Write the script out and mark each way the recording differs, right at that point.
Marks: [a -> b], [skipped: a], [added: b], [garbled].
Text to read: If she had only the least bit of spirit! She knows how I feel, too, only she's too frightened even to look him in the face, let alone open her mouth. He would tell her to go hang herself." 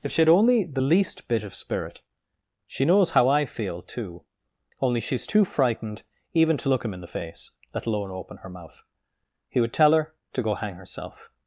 If she had only the least bit of spirit! She knows how I feel, too, only she's too frightened even to look him in the face, let alone open her mouth. He would tell her to go hang herself."